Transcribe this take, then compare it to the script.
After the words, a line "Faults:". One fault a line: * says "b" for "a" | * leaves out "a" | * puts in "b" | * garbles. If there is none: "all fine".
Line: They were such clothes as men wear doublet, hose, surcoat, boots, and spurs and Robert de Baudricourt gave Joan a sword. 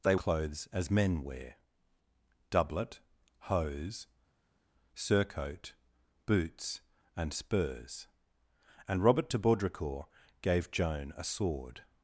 They clothes as men wear doublet, hose, surcoat, boots, and spurs and Robert de Baudricourt gave Joan a sword.
Faults:
* leaves out "were such"